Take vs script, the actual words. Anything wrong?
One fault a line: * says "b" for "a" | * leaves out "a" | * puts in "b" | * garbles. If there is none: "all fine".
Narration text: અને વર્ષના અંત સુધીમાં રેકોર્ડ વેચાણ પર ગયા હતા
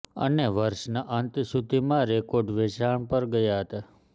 all fine